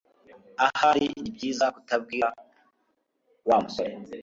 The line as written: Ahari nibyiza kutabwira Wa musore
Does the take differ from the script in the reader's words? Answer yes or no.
no